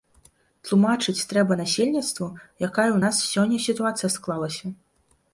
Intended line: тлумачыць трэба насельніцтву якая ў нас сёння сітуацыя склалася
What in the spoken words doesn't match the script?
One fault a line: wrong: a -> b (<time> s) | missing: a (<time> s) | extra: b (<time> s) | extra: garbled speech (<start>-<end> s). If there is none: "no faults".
no faults